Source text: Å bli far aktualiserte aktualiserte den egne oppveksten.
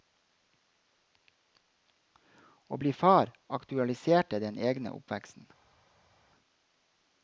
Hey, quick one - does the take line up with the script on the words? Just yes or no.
no